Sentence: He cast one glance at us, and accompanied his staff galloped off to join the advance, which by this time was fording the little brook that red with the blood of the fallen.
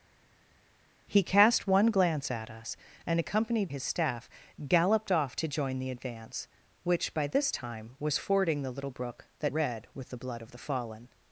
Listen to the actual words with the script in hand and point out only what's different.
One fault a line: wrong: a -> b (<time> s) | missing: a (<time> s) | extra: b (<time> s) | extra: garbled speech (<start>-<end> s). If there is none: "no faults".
no faults